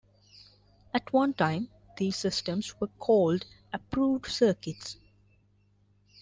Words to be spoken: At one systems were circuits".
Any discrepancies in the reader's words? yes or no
yes